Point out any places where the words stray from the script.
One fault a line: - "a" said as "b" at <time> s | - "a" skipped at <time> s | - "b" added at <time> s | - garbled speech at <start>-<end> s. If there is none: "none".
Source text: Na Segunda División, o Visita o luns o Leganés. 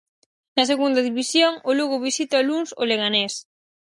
- "Lugo" added at 1.8 s